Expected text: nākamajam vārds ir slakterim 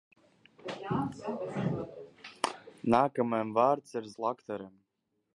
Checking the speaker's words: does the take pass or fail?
pass